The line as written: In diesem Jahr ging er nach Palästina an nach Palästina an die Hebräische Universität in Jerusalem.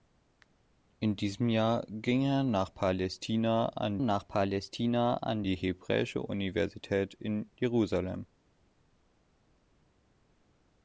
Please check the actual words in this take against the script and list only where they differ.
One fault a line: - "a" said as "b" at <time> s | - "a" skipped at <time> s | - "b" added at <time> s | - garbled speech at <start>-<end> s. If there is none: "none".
none